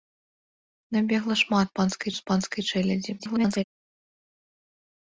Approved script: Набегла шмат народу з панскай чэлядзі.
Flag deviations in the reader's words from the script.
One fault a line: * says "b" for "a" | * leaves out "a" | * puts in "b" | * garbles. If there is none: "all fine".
* says "панскай" for "народу"
* garbles